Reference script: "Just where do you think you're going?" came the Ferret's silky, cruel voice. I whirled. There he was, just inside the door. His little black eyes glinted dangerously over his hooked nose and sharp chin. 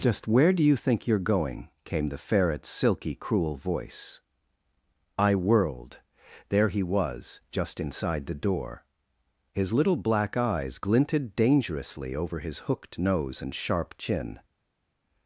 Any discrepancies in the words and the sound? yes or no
no